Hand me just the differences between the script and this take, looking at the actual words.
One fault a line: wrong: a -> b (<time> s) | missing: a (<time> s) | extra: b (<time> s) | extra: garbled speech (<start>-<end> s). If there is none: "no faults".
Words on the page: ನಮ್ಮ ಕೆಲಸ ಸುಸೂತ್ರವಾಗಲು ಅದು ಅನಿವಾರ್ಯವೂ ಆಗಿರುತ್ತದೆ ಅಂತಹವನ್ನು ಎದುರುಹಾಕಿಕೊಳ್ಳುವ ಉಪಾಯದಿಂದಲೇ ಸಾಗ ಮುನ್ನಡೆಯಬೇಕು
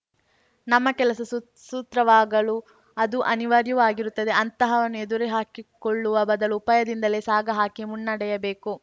extra: ಬದಲು (6.2 s)
extra: ಹಾಕಿ (7.5 s)